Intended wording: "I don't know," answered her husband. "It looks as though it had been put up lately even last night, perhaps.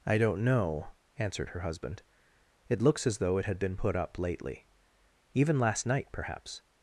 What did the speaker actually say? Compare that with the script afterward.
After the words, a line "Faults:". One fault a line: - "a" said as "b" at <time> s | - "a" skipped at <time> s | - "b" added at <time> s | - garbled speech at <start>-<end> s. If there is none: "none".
"I don't know," answered her husband. "It looks as though it had been put up lately even last night, perhaps.
Faults:
none